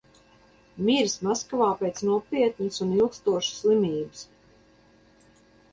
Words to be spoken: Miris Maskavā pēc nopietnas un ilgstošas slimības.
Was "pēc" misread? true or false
false